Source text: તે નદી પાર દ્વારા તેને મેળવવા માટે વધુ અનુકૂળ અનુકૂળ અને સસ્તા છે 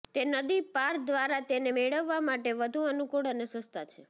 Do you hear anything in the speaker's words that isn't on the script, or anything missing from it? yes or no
yes